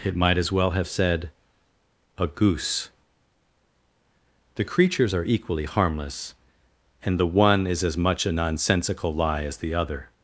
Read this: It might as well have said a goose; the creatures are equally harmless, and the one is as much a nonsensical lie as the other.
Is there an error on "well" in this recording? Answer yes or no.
no